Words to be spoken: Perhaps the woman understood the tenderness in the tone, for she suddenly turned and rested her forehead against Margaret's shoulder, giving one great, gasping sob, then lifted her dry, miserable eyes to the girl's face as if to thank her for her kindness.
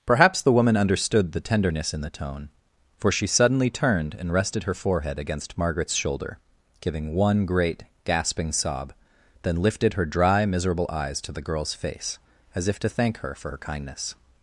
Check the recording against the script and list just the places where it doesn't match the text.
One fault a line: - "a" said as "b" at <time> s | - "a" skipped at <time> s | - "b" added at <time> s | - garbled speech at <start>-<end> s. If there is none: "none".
none